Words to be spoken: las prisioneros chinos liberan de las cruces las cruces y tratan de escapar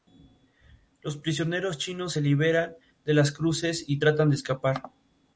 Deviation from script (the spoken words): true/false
true